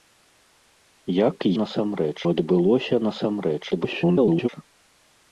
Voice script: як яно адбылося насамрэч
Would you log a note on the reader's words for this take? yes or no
yes